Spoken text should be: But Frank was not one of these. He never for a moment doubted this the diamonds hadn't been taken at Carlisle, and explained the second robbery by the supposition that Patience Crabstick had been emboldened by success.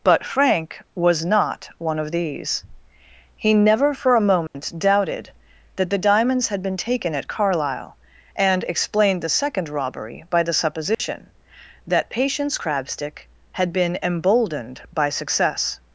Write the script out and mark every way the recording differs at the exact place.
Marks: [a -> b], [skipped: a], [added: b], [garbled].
But Frank was not one of these. He never for a moment doubted [this -> that] the diamonds [hadn't -> had] been taken at Carlisle, and explained the second robbery by the supposition that Patience Crabstick had been emboldened by success.